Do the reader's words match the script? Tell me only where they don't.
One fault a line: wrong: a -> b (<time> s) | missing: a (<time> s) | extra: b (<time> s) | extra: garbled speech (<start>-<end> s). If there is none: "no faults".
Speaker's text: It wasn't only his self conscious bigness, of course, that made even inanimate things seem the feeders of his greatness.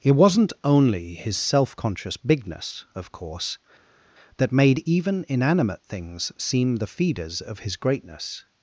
no faults